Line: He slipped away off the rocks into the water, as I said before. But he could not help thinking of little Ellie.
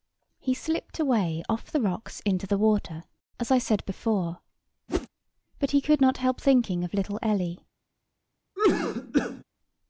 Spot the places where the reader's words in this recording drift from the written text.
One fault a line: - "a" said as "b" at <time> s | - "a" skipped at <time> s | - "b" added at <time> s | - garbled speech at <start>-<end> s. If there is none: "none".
none